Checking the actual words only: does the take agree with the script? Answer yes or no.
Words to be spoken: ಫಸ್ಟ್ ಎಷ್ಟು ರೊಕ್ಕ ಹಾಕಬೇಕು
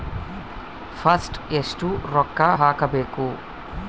yes